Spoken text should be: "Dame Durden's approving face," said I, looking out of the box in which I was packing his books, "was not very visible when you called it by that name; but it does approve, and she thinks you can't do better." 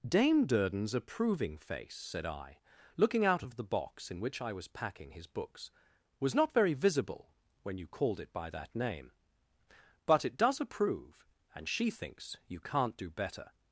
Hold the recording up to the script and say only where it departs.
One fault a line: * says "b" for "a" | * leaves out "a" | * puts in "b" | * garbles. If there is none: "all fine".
all fine